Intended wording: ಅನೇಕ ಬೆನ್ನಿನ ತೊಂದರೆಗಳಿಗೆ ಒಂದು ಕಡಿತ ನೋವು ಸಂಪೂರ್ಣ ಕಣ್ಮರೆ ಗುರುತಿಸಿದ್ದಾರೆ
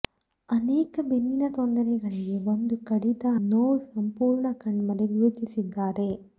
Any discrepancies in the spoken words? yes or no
no